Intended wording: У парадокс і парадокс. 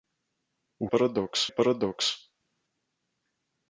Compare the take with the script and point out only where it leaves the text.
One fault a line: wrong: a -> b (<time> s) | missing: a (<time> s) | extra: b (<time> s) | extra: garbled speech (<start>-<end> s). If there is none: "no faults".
no faults